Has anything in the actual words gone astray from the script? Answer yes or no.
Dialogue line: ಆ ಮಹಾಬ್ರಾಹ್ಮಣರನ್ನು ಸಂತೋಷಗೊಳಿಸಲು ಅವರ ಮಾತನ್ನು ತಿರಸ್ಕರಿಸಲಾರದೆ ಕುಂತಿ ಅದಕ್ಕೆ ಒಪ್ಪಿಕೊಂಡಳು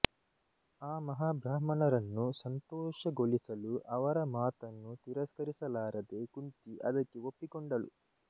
no